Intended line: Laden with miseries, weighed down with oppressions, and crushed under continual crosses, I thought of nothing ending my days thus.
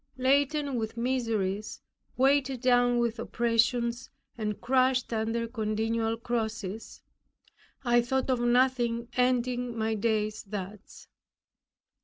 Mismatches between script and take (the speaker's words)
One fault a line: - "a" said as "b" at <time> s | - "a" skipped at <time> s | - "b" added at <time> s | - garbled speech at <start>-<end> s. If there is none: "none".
none